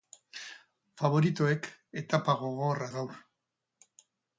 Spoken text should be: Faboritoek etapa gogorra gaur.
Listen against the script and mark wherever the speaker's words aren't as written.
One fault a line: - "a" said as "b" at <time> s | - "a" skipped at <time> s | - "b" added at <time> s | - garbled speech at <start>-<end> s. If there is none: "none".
none